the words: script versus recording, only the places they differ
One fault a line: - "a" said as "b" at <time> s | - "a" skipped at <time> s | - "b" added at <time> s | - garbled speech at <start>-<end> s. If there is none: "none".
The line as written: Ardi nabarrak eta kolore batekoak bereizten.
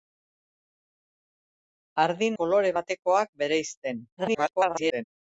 - "nabarrak eta" skipped at 2.3 s
- garbled speech at 4.2-5.0 s